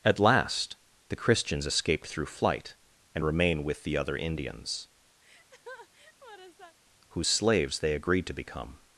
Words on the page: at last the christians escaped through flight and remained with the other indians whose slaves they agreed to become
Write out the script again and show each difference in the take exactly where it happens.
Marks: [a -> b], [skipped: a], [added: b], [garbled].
at last the christians escaped through flight and [remained -> remain] with the other indians whose slaves they agreed to become